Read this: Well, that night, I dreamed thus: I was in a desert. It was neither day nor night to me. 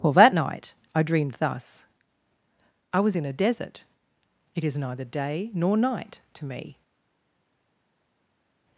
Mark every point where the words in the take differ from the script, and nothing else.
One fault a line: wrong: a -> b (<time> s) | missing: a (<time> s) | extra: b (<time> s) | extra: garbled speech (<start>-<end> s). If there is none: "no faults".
wrong: was -> is (4.6 s)